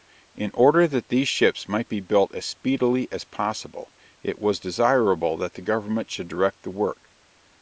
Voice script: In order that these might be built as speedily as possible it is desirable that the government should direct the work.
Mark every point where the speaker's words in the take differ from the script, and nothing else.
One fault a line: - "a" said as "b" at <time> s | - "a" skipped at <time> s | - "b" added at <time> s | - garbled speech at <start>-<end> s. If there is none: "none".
- "ships" added at 1.3 s
- "is" said as "was" at 4.4 s